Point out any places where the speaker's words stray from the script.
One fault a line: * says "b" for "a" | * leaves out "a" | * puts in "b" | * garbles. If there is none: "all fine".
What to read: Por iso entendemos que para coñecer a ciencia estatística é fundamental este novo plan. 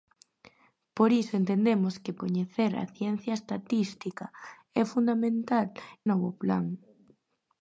* leaves out "para"
* leaves out "este"